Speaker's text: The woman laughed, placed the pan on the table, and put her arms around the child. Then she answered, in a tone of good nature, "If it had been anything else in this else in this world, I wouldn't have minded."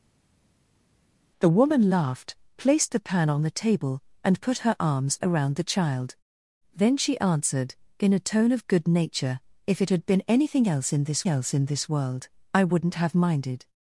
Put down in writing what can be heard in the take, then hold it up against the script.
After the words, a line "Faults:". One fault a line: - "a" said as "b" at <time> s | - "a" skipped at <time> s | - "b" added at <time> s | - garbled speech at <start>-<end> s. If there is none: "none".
The woman laughed, placed the pan on the table, and put her arms around the child. Then she answered, in a tone of good nature, "If it had been anything else in this else in this world, I wouldn't have minded."
Faults:
none